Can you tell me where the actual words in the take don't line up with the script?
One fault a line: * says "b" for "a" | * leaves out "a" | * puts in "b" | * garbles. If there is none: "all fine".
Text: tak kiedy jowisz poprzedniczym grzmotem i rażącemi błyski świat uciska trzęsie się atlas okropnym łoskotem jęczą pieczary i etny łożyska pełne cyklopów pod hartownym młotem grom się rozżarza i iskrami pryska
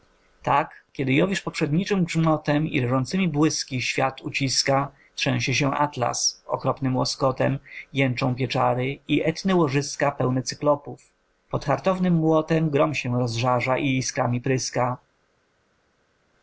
all fine